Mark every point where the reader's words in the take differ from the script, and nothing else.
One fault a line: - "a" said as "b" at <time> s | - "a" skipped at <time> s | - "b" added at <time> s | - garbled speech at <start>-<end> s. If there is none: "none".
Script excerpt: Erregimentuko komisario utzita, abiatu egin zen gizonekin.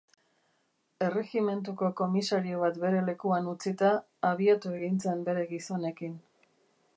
- "bat bere lekuan" added at 2.6 s
- "bere" added at 5.3 s